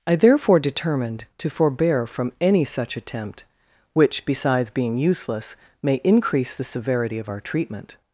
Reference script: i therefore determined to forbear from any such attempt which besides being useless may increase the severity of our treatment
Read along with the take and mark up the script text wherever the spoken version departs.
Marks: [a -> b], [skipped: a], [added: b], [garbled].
i therefore determined to forbear from any such attempt which besides being useless may increase the severity of our treatment